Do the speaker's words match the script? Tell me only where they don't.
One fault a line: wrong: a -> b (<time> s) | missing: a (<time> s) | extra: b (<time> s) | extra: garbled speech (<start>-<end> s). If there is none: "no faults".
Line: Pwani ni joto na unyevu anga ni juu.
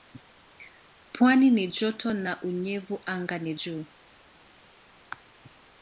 no faults